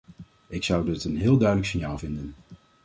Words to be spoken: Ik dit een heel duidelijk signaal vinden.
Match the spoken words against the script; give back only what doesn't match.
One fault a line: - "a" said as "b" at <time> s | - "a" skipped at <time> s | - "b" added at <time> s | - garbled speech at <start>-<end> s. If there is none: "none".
- "zou" added at 0.6 s